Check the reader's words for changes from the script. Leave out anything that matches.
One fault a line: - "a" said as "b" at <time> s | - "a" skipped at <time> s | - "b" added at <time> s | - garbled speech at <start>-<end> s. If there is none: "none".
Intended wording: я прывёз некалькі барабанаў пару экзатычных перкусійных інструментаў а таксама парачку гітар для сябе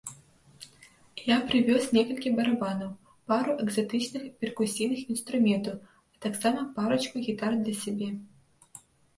none